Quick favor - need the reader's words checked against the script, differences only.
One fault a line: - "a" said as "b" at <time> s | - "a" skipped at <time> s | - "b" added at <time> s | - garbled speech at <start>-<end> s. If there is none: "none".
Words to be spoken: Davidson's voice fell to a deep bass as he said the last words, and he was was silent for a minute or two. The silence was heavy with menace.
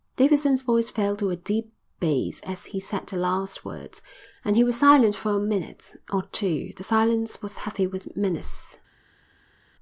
- "was" skipped at 4.8 s